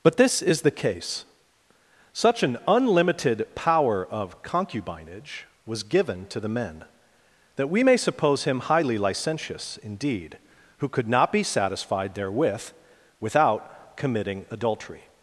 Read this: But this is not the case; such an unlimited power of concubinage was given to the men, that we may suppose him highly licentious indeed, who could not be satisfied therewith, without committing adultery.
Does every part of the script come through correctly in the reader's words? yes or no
no